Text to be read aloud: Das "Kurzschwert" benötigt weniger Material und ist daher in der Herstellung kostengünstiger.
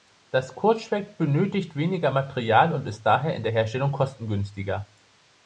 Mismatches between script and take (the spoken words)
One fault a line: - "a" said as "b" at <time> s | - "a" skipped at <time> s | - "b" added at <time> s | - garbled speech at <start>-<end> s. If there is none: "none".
none